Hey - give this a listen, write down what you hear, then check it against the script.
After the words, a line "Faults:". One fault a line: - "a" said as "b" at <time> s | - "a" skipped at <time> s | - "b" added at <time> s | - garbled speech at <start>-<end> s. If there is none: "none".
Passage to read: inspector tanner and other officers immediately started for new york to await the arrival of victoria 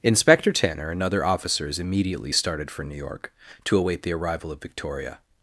inspector tanner and other officers immediately started for new york to await the arrival of victoria
Faults:
none